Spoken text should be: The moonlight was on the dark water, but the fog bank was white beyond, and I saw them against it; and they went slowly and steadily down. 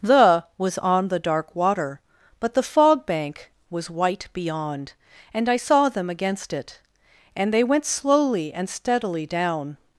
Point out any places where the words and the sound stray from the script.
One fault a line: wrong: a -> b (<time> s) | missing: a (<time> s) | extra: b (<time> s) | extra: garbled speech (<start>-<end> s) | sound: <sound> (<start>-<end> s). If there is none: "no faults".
missing: moonlight (0.5 s)